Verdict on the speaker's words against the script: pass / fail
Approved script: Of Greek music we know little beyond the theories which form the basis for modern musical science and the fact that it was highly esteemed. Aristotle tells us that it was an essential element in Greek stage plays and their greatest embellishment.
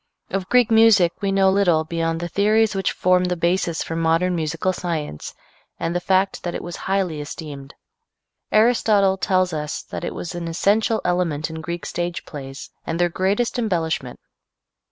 pass